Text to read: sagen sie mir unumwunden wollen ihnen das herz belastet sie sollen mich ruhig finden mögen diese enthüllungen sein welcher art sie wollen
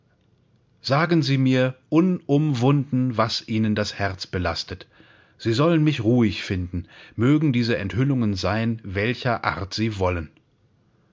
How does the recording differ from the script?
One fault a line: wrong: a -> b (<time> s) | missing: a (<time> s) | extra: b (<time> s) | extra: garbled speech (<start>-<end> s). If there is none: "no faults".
wrong: wollen -> was (3.2 s)